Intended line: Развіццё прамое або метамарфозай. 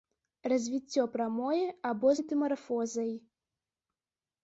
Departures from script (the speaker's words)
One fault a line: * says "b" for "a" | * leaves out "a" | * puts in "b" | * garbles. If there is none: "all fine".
all fine